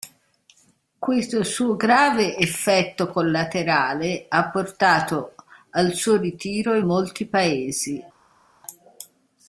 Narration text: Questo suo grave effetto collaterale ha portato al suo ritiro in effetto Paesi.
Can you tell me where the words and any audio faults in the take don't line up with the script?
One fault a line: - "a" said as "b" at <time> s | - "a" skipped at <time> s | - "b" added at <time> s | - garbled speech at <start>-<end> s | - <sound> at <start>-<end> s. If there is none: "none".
- "effetto" said as "molti" at 6.8 s